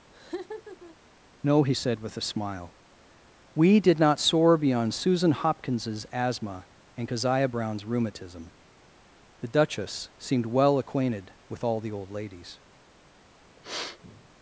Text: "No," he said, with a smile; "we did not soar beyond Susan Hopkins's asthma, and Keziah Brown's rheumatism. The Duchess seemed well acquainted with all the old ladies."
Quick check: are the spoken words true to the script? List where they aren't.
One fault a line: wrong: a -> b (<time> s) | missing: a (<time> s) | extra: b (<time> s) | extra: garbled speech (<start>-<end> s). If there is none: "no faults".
no faults